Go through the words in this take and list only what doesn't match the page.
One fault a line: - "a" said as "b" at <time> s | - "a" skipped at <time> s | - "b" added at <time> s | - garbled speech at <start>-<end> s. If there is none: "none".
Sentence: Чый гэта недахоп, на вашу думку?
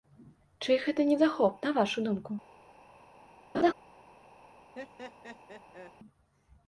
none